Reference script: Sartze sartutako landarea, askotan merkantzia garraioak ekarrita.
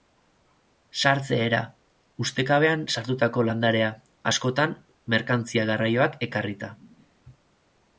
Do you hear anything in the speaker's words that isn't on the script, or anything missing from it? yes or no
yes